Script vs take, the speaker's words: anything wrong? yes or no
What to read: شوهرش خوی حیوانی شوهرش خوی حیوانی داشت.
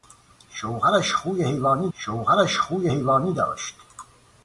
no